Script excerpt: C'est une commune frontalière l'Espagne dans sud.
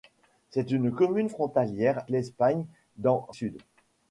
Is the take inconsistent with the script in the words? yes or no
no